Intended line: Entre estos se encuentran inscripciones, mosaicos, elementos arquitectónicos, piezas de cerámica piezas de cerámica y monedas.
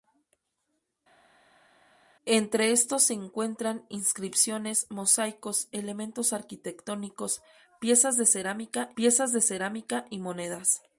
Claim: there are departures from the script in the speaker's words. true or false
false